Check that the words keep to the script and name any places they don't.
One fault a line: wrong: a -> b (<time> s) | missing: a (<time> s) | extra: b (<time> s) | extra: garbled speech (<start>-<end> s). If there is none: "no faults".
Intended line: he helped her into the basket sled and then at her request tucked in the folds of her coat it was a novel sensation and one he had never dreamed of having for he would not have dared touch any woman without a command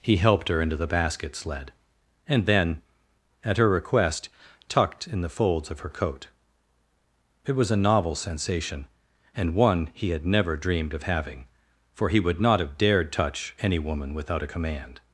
no faults